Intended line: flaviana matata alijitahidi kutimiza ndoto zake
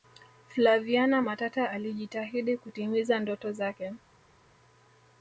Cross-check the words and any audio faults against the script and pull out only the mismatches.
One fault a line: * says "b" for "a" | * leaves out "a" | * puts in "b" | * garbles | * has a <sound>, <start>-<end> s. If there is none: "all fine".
all fine